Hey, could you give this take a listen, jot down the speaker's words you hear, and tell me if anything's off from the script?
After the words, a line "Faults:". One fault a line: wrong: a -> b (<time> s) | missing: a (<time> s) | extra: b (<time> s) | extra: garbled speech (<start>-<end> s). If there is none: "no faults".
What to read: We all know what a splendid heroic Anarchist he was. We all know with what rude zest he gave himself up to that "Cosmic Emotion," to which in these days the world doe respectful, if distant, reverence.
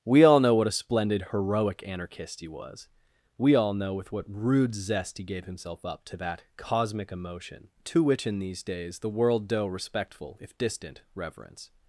We all know what a splendid heroic Anarchist he was. We all know with what rude zest he gave himself up to that "Cosmic Emotion," to which in these days the world doe respectful, if distant, reverence.
Faults:
no faults